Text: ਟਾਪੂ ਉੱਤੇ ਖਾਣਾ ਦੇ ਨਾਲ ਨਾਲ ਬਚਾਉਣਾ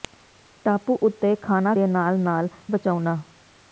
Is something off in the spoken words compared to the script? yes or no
no